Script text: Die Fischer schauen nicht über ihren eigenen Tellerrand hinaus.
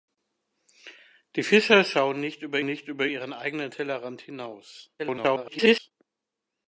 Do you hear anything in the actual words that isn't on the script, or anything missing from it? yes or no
yes